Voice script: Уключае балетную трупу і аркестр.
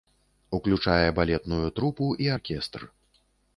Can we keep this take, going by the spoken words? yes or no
yes